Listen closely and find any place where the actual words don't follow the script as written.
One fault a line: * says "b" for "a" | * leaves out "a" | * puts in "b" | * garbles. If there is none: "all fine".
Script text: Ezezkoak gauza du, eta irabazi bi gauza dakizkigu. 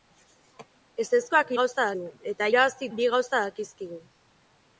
all fine